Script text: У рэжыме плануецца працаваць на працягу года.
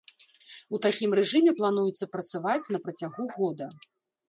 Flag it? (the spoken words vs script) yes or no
yes